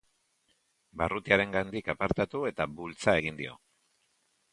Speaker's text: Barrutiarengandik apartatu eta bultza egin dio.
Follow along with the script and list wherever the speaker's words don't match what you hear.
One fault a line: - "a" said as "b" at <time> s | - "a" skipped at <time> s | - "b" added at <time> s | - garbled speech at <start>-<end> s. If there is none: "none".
none